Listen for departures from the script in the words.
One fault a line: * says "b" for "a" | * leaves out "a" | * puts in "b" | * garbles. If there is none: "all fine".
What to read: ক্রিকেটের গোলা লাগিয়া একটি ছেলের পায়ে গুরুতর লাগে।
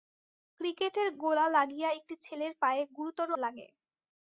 all fine